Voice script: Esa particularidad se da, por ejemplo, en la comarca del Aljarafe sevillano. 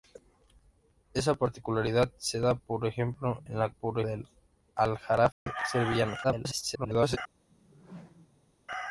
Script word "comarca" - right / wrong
wrong